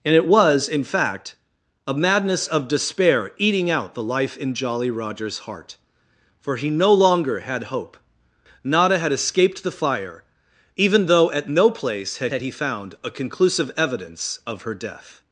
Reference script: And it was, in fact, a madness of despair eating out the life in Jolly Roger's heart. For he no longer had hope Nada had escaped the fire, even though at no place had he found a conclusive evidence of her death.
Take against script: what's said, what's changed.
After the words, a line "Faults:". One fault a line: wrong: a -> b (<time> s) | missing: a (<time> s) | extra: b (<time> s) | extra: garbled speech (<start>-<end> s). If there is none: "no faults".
And it was, in fact, a madness of despair eating out the life in Jolly Roger's heart. For he no longer had hope Nada had escaped the fire, even though at no place had had he found a conclusive evidence of her death.
Faults:
extra: had (12.3 s)